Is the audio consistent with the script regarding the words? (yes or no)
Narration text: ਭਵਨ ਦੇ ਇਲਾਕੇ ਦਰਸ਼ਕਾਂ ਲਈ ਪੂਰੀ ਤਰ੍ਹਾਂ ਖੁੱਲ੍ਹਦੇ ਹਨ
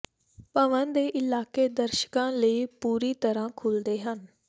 yes